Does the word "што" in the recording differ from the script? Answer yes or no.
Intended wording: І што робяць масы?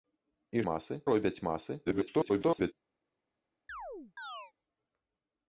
yes